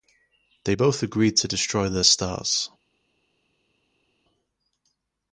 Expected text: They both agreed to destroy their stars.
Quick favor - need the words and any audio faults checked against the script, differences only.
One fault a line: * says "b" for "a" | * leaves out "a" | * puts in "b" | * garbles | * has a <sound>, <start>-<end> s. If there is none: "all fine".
all fine